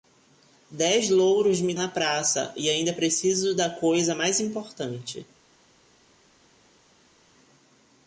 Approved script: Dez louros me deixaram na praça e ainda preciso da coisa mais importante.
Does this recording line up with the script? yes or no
no